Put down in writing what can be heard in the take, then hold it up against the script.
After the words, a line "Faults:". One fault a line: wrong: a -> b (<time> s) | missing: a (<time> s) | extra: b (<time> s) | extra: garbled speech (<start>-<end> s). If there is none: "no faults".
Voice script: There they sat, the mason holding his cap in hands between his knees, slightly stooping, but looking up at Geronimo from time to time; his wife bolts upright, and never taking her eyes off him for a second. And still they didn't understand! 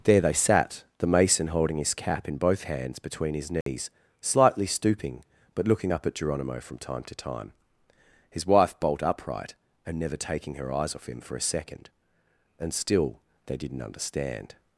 There they sat, the mason holding his cap in both hands between his knees, slightly stooping, but looking up at Geronimo from time to time; his wife bolt upright, and never taking her eyes off him for a second. And still they didn't understand!
Faults:
extra: both (2.4 s)
wrong: bolts -> bolt (8.8 s)